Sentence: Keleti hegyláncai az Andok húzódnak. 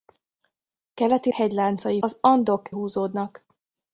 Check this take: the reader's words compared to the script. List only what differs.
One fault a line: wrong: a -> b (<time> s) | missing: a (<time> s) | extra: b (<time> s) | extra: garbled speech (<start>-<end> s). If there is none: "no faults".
no faults